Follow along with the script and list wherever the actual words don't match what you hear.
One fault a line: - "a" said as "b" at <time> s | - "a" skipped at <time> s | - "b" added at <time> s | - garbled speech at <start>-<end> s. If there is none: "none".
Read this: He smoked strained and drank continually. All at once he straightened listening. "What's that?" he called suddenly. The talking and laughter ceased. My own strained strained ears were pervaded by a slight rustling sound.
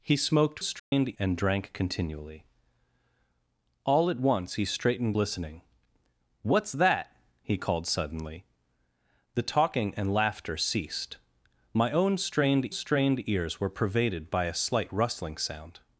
none